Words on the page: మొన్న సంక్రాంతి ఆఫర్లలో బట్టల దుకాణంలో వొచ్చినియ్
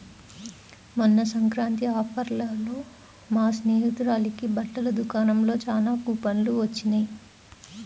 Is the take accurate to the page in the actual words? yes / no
no